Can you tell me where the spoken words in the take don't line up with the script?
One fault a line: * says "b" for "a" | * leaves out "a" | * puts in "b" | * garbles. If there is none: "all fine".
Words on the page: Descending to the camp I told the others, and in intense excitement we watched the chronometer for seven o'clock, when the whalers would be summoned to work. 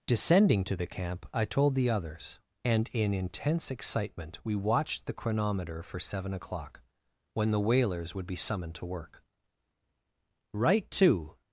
* puts in "Right to"